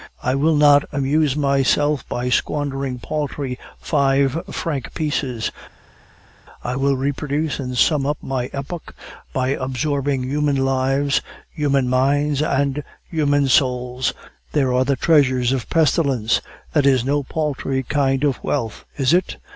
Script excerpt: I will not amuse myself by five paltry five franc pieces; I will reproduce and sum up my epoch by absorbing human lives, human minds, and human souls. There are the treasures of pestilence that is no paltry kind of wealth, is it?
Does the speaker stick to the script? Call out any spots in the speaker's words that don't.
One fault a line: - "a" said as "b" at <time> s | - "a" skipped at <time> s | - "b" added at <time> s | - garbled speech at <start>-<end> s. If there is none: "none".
- "five" said as "squandering" at 2.3 s